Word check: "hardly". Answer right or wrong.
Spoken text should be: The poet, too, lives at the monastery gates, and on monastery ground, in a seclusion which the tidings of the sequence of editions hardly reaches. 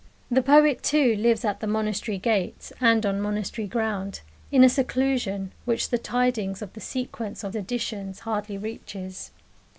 right